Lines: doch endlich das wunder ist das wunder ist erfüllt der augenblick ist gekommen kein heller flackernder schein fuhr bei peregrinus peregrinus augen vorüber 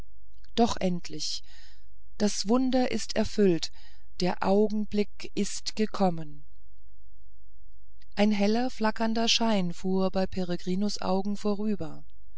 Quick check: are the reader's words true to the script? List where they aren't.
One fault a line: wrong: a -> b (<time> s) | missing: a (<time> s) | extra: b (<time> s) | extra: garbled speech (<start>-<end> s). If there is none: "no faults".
missing: das wunder ist (3.2 s)
wrong: kein -> ein (8.1 s)
missing: peregrinus (11.0 s)